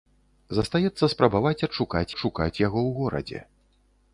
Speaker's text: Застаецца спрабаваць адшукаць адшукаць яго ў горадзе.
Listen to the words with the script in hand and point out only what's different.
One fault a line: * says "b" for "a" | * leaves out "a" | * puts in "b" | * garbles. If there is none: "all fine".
all fine